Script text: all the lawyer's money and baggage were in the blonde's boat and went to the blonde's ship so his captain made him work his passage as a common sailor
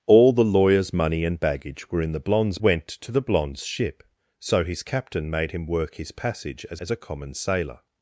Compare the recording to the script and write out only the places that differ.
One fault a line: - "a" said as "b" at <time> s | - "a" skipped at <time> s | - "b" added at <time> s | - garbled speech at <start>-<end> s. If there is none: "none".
- "boat and" skipped at 2.6 s
- "as" added at 6.8 s